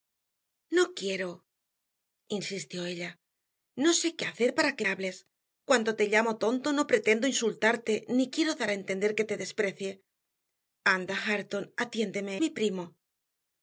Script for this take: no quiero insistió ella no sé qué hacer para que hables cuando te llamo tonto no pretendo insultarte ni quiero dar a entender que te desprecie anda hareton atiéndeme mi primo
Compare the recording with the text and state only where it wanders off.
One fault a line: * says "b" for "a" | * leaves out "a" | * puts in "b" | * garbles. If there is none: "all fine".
all fine